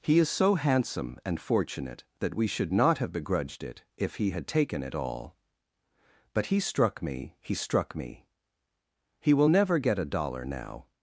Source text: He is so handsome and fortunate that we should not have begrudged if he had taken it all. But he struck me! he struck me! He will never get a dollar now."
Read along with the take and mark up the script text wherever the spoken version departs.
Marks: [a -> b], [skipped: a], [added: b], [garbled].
He is so handsome and fortunate that we should not have begrudged [added: it] if he had taken it all. But he struck me! he struck me! He will never get a dollar now."